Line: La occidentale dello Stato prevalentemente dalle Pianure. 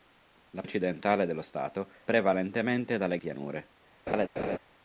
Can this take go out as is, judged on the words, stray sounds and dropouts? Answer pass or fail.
fail